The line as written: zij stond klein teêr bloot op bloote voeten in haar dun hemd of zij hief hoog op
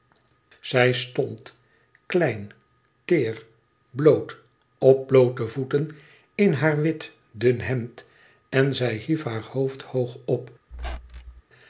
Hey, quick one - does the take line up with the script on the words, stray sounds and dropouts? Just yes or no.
no